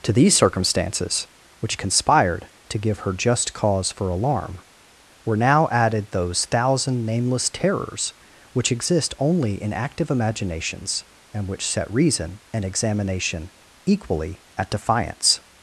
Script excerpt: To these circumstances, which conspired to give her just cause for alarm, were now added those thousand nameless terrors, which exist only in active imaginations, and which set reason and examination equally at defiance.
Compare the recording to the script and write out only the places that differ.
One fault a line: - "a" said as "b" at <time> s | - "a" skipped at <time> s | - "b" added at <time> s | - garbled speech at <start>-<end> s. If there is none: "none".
none